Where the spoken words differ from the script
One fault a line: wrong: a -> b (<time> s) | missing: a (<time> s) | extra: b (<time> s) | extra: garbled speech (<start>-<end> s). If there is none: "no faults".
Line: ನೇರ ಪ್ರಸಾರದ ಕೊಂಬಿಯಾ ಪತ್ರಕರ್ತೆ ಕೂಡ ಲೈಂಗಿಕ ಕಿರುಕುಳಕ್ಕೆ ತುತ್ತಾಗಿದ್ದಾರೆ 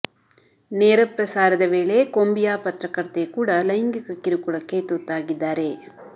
extra: ವೇಳೆ (1.7 s)